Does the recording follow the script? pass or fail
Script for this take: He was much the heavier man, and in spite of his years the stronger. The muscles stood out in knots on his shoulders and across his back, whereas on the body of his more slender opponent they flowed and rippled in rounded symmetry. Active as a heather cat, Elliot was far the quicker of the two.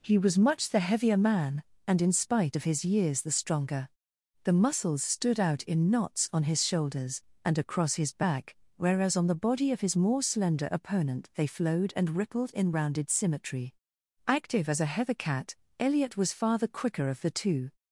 pass